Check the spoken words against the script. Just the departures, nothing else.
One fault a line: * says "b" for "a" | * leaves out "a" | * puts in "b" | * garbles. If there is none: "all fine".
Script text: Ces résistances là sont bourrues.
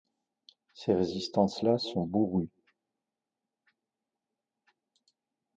all fine